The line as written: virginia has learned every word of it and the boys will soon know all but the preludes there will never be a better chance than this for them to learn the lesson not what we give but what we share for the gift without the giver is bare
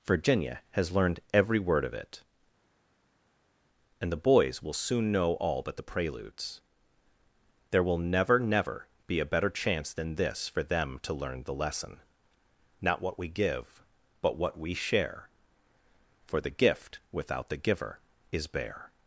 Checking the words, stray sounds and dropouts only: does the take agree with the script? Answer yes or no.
no